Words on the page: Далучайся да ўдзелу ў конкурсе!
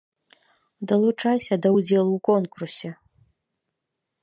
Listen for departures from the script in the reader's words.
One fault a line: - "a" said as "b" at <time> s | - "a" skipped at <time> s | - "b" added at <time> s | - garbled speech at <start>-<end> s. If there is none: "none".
none